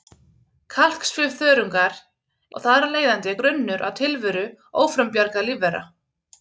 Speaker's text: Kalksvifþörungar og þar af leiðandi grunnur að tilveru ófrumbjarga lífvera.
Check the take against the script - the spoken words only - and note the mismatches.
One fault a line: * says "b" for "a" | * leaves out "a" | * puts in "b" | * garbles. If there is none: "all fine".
all fine